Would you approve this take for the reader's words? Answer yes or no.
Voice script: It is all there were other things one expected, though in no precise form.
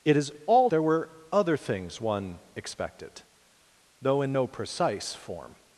yes